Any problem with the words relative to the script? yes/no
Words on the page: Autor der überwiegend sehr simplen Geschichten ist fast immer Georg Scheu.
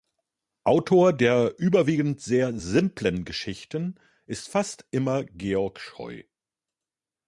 no